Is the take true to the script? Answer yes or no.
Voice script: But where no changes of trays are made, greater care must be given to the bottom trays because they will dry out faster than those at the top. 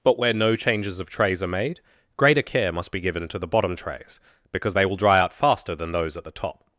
yes